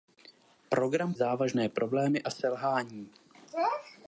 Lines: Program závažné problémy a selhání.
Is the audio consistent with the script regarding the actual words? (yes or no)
yes